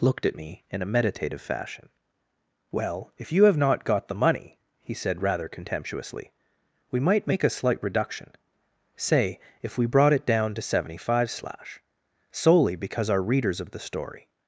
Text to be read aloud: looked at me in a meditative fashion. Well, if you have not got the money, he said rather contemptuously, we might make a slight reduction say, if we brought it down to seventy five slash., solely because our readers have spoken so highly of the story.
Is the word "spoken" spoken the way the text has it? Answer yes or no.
no